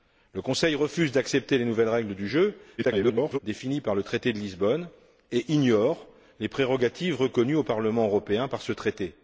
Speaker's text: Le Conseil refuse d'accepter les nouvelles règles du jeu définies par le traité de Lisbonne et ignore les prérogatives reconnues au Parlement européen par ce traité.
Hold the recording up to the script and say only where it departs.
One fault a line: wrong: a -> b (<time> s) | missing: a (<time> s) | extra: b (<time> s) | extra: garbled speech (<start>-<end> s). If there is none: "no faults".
extra: garbled speech (2.8-3.4 s)